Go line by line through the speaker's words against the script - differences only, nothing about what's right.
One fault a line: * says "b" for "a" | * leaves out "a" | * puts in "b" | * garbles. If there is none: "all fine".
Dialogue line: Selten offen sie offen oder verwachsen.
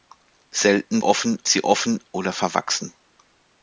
all fine